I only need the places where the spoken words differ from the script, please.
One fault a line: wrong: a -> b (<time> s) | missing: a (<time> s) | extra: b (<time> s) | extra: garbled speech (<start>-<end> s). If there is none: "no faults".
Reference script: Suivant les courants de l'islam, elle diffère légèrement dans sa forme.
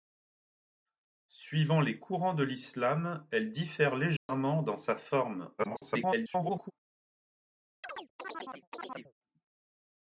extra: garbled speech (5.6-6.7 s)